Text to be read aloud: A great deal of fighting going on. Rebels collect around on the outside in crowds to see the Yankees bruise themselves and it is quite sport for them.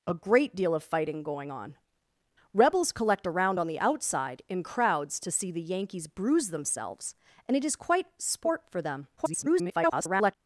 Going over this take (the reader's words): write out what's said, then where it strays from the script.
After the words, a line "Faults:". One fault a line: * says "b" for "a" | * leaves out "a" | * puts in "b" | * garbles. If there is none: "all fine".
A great deal of fighting going on. Rebels collect around on the outside in crowds to see the Yankees bruise themselves and it is quite sport for them. [garbled]
Faults:
* garbles